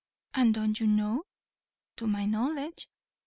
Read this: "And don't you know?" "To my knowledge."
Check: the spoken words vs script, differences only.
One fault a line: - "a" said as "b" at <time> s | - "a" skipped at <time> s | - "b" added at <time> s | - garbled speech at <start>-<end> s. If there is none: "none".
none